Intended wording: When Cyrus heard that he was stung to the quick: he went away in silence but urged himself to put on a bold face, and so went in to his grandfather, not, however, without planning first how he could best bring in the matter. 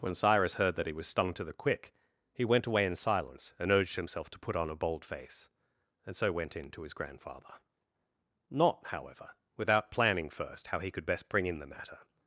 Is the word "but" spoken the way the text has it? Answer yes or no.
no